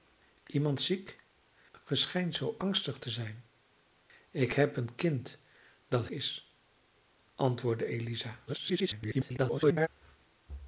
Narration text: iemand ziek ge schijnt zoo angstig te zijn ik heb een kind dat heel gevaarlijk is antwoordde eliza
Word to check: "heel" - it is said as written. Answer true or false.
false